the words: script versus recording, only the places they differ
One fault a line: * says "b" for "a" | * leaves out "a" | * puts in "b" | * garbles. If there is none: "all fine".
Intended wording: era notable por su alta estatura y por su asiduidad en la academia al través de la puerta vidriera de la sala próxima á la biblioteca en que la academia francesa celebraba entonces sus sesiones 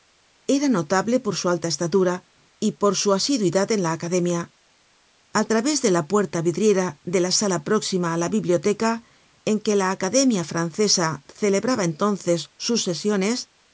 all fine